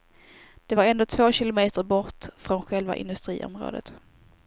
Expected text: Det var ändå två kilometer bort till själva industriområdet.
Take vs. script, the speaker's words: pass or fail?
fail